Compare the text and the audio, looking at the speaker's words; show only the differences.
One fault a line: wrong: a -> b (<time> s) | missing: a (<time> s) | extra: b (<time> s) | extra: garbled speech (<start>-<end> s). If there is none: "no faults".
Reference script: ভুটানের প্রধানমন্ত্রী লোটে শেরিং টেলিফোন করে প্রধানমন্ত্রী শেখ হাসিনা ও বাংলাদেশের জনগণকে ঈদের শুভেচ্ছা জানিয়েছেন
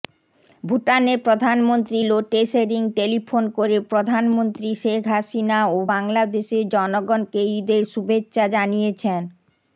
no faults